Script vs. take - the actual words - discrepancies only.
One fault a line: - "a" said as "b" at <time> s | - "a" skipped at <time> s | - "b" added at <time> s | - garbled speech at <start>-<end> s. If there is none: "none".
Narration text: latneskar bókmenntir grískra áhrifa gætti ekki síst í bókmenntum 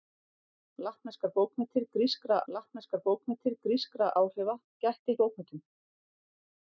- "latneskar bókmenntir grískra" added at 2.5 s
- "ekki síst" skipped at 5.2 s